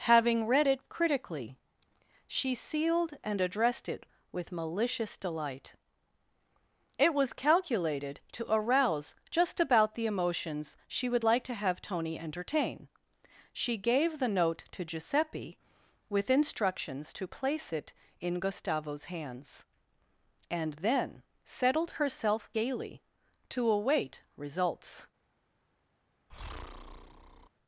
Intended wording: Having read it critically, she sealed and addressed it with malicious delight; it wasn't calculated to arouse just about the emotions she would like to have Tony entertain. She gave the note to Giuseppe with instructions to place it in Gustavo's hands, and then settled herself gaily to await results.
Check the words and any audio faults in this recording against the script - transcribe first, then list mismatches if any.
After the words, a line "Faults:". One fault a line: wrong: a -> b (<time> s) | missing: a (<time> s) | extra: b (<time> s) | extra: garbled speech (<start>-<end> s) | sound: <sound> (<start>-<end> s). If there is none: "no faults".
Having read it critically, she sealed and addressed it with malicious delight; it was calculated to arouse just about the emotions she would like to have Tony entertain. She gave the note to Giuseppe with instructions to place it in Gustavo's hands, and then settled herself gaily to await results.
Faults:
wrong: wasn't -> was (7.1 s)
sound: breath (26.3-27.5 s)